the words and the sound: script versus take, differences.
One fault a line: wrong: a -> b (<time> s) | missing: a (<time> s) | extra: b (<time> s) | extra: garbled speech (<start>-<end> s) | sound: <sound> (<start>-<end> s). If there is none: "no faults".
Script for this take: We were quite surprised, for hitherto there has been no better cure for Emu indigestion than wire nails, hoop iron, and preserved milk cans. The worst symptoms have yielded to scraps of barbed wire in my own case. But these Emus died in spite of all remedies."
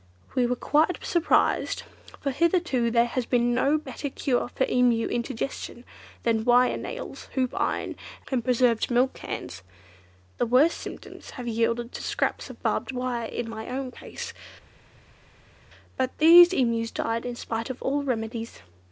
no faults